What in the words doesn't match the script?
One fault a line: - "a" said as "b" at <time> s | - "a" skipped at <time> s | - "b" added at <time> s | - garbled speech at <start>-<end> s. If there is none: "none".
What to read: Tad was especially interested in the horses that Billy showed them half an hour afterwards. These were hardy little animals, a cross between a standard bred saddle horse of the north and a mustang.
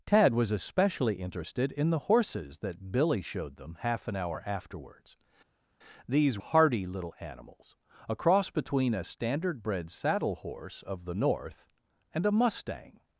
- "were" skipped at 6.4 s